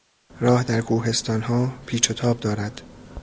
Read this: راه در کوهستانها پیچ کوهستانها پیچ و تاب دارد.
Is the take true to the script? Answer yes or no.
no